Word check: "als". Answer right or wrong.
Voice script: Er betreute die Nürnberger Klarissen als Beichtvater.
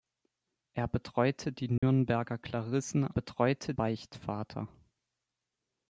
wrong